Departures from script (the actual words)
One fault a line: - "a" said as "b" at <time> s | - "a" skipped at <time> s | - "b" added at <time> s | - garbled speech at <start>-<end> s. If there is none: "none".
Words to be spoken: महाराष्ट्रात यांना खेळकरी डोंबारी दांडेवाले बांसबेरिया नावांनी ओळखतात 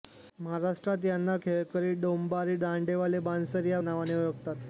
none